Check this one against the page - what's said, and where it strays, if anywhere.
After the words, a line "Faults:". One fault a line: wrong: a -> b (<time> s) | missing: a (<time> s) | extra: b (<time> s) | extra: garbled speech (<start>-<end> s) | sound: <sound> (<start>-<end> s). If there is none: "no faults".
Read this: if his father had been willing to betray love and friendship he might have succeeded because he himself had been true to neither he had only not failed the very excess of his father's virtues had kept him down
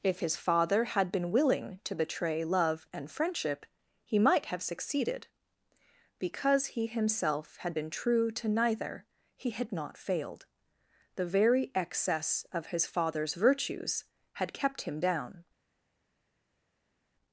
if his father had been willing to betray love and friendship he might have succeeded because he himself had been true to neither he had not failed the very excess of his father's virtues had kept him down
Faults:
missing: only (9.7 s)